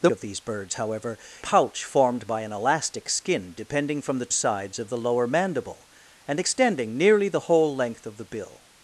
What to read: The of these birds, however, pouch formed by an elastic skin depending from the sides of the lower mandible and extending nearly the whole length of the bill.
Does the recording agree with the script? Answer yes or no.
yes